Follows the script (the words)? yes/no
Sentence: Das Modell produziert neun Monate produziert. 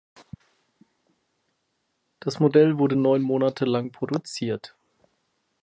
no